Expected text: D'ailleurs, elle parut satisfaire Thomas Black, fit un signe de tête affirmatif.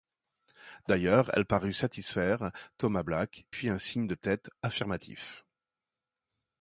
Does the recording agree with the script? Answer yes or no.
yes